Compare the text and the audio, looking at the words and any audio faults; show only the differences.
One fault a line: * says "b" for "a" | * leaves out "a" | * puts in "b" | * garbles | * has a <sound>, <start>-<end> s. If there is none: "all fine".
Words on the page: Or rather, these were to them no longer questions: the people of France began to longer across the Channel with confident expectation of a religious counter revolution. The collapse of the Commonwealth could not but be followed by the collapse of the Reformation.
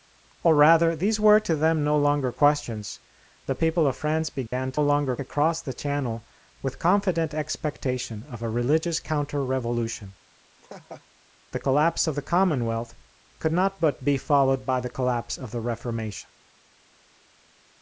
* has a dropout, 4.5-4.5 s
* has a laugh, 10.6-11.1 s